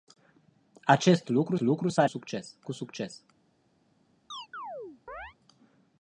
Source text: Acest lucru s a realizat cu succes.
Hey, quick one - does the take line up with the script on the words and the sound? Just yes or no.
no